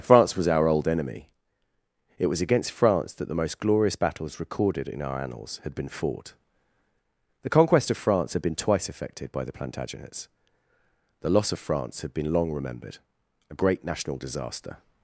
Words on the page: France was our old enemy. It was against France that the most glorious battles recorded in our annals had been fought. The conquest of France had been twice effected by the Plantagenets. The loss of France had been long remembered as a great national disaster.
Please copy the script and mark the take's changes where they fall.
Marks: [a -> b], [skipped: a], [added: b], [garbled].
France was our old enemy. It was against France that the most glorious battles recorded in our annals had been fought. The conquest of France had been twice effected by the Plantagenets. The loss of France had been long remembered [skipped: as] a great national disaster.